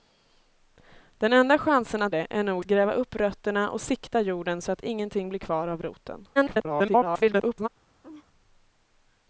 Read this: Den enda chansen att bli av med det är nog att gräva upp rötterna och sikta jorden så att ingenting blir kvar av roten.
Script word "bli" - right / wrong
wrong